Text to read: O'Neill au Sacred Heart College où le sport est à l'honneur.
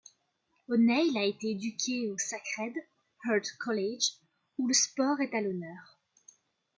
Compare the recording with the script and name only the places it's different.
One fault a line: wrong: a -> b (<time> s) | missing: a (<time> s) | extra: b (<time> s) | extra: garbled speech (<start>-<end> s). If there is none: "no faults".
extra: a été éduqué (1.1 s)